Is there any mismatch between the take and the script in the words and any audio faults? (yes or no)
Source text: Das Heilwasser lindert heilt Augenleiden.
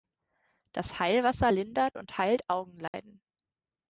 yes